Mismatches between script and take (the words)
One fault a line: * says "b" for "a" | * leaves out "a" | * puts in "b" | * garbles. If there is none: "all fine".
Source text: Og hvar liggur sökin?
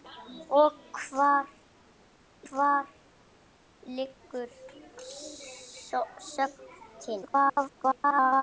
* puts in "hvar"
* garbles